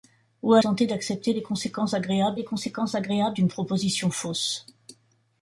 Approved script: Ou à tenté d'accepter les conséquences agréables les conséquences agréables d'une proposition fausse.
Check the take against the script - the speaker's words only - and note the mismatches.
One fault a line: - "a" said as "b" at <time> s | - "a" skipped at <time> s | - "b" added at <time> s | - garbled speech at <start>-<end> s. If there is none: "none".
none